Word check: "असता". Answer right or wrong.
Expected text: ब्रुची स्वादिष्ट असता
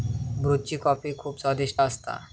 right